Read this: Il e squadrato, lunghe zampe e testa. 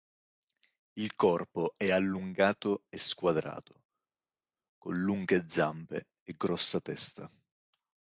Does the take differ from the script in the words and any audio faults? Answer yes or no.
yes